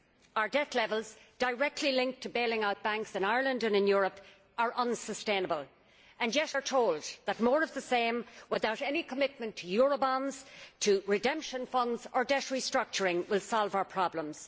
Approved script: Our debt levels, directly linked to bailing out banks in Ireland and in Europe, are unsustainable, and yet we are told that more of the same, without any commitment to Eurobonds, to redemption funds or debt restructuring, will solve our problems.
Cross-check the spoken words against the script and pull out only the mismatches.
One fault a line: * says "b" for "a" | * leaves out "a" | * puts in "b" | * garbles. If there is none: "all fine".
* leaves out "we"